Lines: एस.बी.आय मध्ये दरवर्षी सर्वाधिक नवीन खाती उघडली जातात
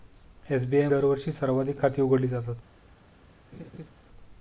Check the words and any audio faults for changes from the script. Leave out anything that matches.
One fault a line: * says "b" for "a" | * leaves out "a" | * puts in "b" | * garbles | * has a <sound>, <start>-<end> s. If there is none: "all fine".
* leaves out "मध्ये"
* leaves out "नवीन"
* has a laugh, 3.5-3.9 s